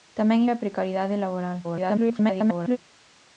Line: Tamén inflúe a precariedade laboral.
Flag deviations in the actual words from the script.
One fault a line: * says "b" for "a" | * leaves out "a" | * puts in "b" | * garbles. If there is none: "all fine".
* leaves out "inflúe"
* garbles